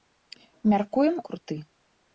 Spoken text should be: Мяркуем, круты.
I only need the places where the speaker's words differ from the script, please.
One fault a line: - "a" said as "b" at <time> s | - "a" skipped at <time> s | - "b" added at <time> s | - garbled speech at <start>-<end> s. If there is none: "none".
none